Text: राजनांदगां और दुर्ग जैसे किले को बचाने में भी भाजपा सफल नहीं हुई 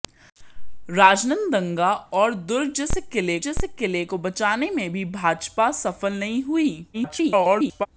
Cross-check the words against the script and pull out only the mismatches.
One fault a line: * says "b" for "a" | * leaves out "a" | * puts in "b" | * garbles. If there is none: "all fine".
* puts in "जैसे किले"
* garbles